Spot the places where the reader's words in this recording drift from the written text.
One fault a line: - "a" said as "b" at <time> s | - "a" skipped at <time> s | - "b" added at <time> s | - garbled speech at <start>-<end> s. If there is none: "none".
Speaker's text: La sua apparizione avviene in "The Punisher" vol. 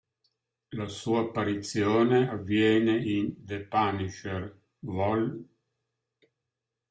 none